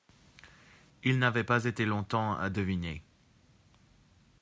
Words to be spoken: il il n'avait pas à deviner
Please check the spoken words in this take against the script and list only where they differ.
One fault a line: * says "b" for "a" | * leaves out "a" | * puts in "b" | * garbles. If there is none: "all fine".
* leaves out "il"
* puts in "été longtemps"